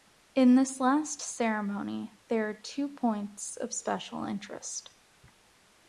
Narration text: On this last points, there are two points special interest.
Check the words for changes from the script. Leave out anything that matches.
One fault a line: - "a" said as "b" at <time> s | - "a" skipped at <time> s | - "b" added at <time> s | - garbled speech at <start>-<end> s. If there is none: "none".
- "On" said as "In" at 0.3 s
- "points" said as "ceremony" at 1.2 s
- "of" added at 3.6 s